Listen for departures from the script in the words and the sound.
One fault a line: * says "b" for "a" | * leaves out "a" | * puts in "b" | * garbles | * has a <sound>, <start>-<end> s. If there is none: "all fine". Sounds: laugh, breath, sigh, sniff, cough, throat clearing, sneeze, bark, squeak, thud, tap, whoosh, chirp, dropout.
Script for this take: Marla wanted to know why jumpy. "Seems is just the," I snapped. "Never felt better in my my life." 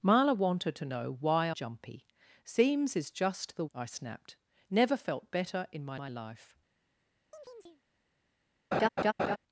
* has a chirp, 7.3-7.8 s
* has a laugh, 8.7-9.4 s